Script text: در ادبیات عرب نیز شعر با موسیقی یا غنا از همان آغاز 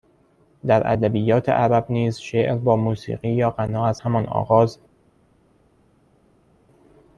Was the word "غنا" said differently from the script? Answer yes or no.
no